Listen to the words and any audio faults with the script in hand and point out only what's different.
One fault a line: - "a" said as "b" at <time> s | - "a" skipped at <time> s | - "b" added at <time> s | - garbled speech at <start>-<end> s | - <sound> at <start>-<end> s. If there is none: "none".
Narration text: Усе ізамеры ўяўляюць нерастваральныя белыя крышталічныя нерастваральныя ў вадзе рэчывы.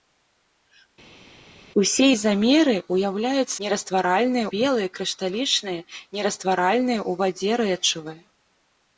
none